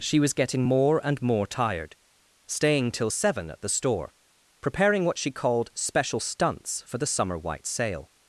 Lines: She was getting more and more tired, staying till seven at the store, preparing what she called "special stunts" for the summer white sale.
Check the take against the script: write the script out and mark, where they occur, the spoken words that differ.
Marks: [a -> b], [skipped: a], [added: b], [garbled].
She was getting more and more tired, staying till seven at the store, preparing what she called "special stunts" for the summer white sale.